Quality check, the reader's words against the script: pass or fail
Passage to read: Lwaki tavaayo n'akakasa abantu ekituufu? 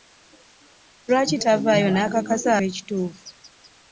fail